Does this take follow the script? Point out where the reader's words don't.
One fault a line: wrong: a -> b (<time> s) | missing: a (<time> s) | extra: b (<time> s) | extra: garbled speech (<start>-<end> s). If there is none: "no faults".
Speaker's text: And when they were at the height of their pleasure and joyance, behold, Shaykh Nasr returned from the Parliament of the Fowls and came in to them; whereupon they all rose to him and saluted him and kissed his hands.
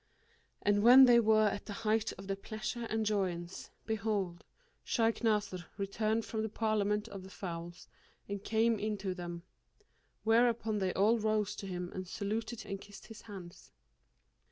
missing: him (12.6 s)